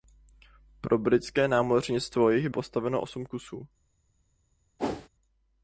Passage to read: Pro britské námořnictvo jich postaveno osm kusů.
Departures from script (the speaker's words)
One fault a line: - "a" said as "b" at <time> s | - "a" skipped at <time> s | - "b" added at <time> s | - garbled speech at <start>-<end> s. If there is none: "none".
none